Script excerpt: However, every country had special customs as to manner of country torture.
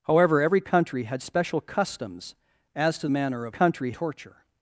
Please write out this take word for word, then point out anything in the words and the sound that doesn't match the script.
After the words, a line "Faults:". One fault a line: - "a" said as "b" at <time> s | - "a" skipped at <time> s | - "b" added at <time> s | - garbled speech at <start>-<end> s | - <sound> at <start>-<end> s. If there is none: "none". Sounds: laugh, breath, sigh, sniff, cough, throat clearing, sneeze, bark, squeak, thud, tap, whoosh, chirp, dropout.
However, every country had special customs as to manner of country torture.
Faults:
none